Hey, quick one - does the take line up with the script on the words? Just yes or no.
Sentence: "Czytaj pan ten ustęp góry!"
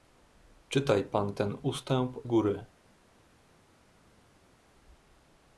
yes